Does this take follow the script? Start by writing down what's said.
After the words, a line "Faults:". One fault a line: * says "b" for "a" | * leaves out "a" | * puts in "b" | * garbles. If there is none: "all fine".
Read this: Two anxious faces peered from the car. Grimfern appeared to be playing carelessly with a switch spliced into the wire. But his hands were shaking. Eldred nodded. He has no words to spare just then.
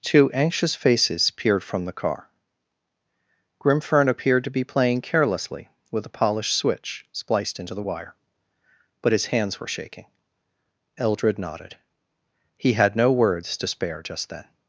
Two anxious faces peered from the car. Grimfern appeared to be playing carelessly with a polished switch spliced into the wire. But his hands were shaking. Eldred nodded. He had no words to spare just then.
Faults:
* puts in "polished"
* says "had" for "has"